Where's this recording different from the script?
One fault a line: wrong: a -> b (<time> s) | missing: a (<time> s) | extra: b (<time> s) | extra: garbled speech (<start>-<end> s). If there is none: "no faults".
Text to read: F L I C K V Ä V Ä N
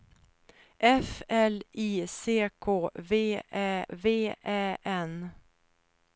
no faults